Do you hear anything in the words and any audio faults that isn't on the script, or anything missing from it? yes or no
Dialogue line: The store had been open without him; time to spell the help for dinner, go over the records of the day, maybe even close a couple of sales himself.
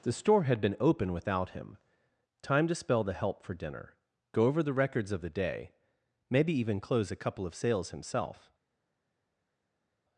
no